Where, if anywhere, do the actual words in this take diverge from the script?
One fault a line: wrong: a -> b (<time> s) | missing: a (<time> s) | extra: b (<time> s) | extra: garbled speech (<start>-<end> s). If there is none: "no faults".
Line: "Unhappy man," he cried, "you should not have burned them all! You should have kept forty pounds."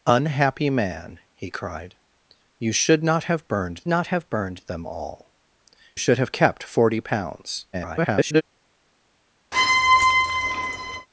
extra: not have burned (3.9 s)
missing: You (5.3 s)
extra: garbled speech (7.7-8.4 s)